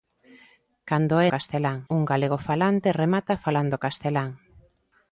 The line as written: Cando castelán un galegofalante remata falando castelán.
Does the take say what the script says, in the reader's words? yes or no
yes